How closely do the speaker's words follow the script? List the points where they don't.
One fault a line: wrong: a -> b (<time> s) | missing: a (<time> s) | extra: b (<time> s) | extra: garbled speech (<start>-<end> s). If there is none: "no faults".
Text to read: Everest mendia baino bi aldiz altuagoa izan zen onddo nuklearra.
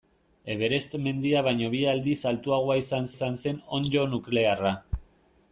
extra: izan (3.1 s)